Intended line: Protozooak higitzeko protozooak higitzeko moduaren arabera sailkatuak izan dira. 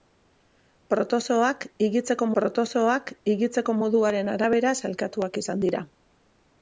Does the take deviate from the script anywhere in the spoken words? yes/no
no